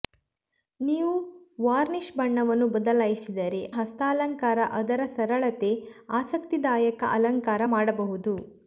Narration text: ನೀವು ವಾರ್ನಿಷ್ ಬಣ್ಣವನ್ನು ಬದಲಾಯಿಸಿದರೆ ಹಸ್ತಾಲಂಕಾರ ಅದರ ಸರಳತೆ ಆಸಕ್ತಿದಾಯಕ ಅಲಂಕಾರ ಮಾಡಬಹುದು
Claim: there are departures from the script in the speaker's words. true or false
false